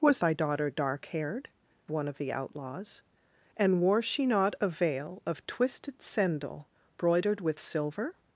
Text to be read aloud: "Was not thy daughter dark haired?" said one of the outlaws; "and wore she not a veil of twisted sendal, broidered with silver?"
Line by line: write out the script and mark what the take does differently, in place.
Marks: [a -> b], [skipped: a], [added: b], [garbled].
"Was [skipped: not] thy daughter dark haired?" [skipped: said] one of the outlaws; "and wore she not a veil of twisted sendal, broidered with silver?"